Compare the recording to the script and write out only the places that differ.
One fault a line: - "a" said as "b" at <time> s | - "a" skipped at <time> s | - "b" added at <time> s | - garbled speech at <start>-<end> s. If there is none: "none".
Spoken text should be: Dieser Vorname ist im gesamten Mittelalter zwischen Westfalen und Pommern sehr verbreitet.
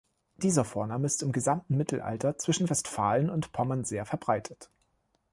none